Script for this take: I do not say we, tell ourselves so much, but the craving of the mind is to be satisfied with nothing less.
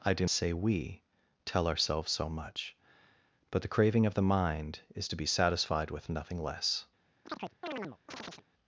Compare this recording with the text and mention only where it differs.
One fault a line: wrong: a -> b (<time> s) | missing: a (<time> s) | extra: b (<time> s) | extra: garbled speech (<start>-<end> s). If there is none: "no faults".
missing: not (0.2 s)